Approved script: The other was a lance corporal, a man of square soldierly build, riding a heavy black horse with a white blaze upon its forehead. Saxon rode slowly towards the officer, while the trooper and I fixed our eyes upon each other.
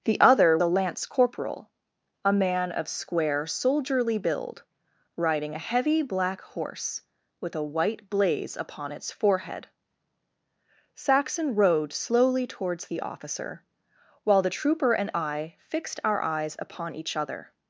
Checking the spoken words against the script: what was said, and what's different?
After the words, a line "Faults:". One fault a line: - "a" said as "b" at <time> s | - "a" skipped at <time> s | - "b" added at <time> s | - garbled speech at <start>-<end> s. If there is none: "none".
The other a lance corporal, a man of square soldierly build, riding a heavy black horse with a white blaze upon its forehead. Saxon rode slowly towards the officer, while the trooper and I fixed our eyes upon each other.
Faults:
- "was" skipped at 0.6 s